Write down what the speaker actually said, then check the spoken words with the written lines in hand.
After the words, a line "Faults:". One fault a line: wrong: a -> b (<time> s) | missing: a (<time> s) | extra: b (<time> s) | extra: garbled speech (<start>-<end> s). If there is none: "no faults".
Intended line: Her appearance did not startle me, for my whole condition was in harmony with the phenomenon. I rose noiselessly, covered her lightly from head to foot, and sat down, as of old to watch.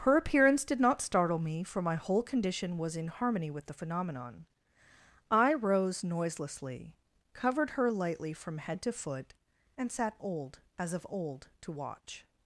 Her appearance did not startle me, for my whole condition was in harmony with the phenomenon. I rose noiselessly, covered her lightly from head to foot, and sat old, as of old to watch.
Faults:
wrong: down -> old (10.2 s)